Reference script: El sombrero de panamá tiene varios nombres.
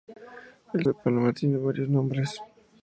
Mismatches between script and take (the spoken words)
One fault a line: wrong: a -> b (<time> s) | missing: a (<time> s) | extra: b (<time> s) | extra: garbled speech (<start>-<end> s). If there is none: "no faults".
missing: sombrero (0.9 s)